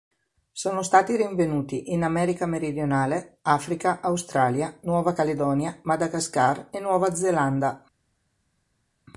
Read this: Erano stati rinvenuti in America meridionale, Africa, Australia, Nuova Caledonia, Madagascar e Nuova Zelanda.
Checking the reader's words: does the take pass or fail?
fail